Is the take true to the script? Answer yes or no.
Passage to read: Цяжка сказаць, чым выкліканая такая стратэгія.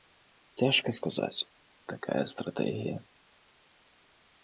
no